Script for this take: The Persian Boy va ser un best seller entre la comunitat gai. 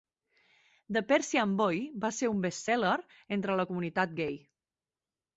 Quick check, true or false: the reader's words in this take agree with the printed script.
true